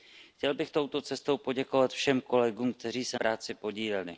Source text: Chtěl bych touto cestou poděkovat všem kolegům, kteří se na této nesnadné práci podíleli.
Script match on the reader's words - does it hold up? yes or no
no